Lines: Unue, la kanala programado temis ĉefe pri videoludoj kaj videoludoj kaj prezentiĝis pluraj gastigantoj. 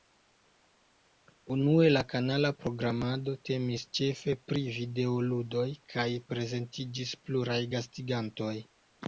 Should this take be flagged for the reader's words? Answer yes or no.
yes